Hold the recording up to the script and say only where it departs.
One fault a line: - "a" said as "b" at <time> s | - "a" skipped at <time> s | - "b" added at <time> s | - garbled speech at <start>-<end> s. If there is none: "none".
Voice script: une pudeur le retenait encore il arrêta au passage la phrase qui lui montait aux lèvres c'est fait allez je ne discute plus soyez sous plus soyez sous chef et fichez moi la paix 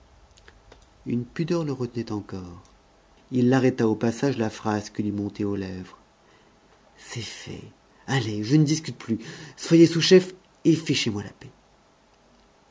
- "plus soyez sous" skipped at 10.0 s